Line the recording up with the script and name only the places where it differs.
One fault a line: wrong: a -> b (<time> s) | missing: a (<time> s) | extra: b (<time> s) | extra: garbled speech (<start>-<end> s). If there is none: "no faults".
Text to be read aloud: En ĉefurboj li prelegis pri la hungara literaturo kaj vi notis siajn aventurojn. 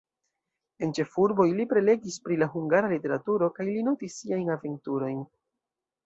wrong: vi -> li (3.7 s)